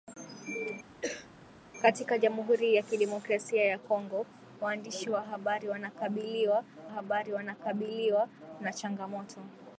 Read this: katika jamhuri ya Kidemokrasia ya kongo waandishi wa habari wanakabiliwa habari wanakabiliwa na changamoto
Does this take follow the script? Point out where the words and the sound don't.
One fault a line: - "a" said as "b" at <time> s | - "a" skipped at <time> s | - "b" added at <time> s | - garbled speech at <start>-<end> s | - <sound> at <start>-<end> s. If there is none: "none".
- cough at 1.0-1.3 s